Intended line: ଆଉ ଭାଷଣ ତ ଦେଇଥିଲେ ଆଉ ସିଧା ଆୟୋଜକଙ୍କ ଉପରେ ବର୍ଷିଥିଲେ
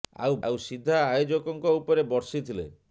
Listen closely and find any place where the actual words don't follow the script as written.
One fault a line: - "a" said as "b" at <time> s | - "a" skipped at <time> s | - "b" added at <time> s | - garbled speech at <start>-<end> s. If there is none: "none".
- "ଭାଷଣ ତ ଦେଇଥିଲେ" skipped at 0.4 s